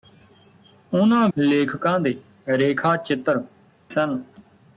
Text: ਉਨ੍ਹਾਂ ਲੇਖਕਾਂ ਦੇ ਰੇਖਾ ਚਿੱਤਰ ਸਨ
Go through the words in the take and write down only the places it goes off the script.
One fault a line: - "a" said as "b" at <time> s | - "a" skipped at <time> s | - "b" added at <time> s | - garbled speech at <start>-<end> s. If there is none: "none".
none